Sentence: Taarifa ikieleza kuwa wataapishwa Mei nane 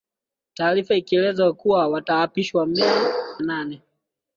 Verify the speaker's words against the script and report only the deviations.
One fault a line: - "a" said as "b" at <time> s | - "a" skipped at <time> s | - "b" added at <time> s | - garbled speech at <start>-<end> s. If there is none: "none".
none